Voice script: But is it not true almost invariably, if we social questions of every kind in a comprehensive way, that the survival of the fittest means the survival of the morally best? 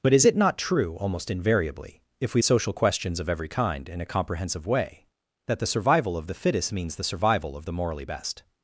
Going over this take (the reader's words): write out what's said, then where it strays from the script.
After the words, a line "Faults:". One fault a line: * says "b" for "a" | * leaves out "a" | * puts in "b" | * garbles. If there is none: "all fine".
But is it not true almost invariably, if we social questions of every kind in a comprehensive way, that the survival of the fittest means the survival of the morally best?
Faults:
all fine